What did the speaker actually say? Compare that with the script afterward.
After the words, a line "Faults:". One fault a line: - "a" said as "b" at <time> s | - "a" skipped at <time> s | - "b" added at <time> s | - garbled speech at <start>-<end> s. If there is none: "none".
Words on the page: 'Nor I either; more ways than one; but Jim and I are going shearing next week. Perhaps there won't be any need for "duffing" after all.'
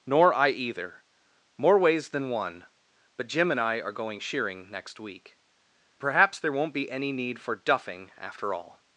'Nor I either; more ways than one; but Jim and I are going shearing next week. Perhaps there won't be any need for "duffing" after all.'
Faults:
none